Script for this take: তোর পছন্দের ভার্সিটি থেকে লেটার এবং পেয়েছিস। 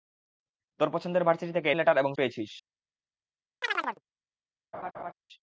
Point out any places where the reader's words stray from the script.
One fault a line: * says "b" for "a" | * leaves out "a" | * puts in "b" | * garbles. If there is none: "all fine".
all fine